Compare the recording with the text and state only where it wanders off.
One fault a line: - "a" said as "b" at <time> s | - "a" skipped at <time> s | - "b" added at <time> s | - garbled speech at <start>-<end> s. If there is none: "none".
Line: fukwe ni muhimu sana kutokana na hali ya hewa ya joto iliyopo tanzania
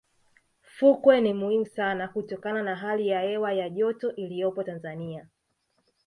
none